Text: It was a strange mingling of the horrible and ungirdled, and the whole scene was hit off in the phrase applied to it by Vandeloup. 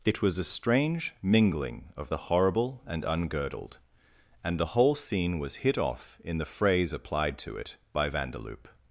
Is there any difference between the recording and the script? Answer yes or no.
no